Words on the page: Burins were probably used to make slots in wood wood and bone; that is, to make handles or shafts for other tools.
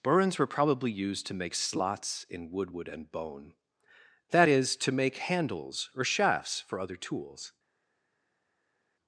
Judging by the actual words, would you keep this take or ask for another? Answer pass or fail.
pass